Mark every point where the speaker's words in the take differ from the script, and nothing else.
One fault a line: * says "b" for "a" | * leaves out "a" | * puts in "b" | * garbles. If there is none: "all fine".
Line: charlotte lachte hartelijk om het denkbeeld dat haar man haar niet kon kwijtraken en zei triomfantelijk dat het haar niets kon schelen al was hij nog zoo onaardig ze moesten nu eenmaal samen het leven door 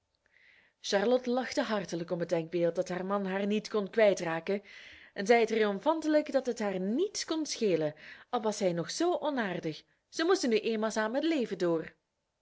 all fine